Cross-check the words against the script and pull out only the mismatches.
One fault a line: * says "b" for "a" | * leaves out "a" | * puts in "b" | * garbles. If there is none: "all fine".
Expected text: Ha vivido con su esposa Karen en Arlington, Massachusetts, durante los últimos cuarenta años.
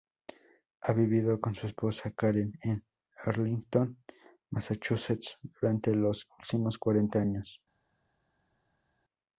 all fine